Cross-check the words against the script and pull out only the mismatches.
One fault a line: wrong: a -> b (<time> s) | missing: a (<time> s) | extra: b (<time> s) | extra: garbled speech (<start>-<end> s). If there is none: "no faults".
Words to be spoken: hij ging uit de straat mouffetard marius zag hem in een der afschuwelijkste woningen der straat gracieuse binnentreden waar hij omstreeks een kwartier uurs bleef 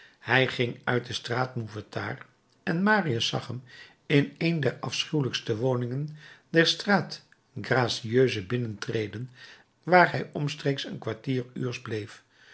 extra: en (2.6 s)